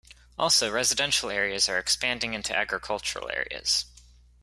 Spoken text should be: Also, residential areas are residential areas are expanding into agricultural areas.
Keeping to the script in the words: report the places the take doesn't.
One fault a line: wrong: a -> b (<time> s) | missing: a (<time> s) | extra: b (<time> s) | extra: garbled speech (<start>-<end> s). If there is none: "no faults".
missing: residential areas are (1.8 s)